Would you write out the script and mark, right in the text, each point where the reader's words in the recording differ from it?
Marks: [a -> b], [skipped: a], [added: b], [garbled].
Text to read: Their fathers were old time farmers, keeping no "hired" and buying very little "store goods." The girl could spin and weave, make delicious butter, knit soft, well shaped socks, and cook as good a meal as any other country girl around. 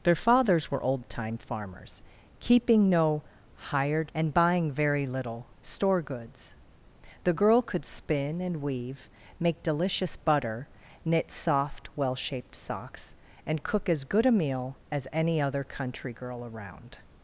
Their fathers were old time farmers, keeping no "hired" and buying very little "store goods." The girl could spin and weave, make delicious butter, knit soft, well shaped socks, and cook as good a meal as any other country girl around.